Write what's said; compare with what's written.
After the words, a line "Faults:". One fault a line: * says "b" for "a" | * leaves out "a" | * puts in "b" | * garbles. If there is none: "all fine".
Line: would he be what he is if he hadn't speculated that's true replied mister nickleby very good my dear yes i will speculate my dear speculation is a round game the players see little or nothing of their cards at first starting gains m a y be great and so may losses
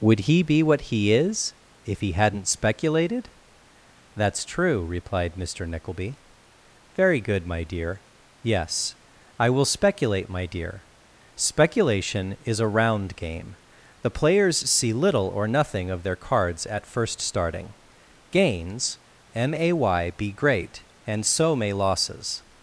would he be what he is if he hadn't speculated that's true replied mister nickleby very good my dear yes i will speculate my dear speculation is a round game the players see little or nothing of their cards at first starting gains m a y be great and so may losses
Faults:
all fine